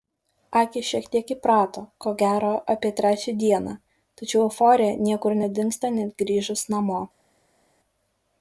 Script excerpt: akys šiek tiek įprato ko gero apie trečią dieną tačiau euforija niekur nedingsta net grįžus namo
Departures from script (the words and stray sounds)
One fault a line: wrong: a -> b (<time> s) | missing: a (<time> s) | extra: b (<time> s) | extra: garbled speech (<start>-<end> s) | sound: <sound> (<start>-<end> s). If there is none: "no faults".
no faults